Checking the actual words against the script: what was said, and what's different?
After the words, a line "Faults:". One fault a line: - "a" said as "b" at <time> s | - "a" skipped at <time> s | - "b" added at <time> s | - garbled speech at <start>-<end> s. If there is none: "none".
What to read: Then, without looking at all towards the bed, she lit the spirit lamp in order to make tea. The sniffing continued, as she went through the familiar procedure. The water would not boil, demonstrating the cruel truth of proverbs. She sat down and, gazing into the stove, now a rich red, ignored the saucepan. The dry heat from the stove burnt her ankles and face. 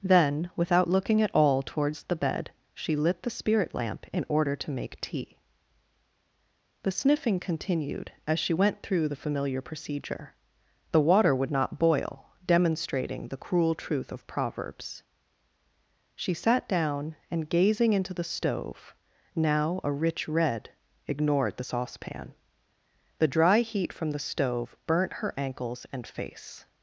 Then, without looking at all towards the bed, she lit the spirit lamp in order to make tea. The sniffing continued, as she went through the familiar procedure. The water would not boil, demonstrating the cruel truth of proverbs. She sat down and, gazing into the stove, now a rich red, ignored the saucepan. The dry heat from the stove burnt her ankles and face.
Faults:
none